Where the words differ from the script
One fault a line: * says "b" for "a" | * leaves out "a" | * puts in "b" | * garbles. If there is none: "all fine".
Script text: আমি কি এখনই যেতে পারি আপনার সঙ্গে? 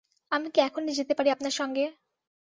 all fine